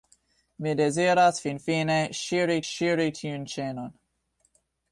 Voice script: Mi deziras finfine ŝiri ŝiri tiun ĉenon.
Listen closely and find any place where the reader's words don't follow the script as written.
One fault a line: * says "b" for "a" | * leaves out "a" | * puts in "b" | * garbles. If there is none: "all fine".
all fine